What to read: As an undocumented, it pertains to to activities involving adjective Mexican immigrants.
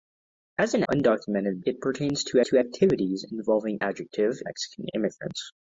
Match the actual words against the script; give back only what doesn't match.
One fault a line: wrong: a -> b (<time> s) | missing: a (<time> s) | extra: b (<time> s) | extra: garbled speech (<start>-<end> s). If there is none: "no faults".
no faults